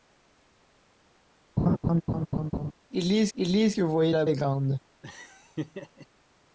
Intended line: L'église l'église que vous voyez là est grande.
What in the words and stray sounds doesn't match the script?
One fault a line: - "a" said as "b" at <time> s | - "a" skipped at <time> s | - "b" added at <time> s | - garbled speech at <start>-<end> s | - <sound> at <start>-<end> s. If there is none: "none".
- laugh at 1.6-2.7 s
- laugh at 5.0-6.1 s